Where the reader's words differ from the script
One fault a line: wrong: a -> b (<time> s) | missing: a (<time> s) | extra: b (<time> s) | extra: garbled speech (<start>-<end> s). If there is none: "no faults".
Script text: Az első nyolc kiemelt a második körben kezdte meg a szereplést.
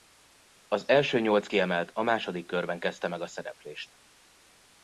no faults